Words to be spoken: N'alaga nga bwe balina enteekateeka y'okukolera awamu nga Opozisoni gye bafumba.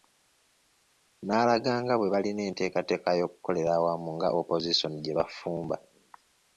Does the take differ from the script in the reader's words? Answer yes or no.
no